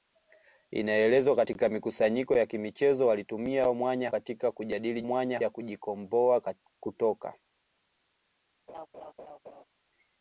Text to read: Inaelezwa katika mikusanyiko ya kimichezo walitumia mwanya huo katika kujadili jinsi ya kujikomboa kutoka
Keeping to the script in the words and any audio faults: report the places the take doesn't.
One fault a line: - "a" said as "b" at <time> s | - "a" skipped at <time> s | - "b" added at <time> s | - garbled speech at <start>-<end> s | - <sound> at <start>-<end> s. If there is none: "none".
- "huo" skipped at 4.1 s
- "jinsi" said as "mwanya" at 5.0 s
- laugh at 8.7-9.6 s